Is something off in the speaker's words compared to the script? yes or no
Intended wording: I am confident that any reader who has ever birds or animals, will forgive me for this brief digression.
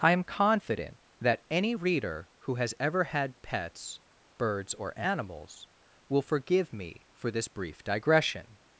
yes